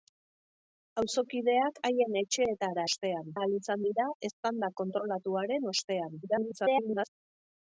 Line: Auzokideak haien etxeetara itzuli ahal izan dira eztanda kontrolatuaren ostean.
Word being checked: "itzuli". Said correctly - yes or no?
no